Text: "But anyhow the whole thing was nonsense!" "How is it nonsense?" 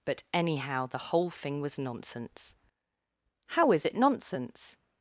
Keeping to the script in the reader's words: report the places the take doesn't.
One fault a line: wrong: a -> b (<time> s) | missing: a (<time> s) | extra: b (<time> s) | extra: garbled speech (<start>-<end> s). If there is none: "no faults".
no faults